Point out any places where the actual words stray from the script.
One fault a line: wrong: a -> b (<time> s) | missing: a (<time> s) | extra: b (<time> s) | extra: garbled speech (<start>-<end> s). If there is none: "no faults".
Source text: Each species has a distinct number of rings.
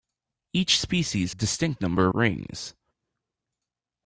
missing: has (1.3 s)
missing: of (2.1 s)